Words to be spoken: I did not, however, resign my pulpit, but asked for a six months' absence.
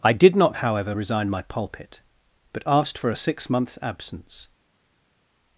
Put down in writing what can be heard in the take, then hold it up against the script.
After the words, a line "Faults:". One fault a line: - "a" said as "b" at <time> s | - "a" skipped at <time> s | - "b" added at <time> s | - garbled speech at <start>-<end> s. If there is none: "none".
I did not, however, resign my pulpit, but asked for a six months' absence.
Faults:
none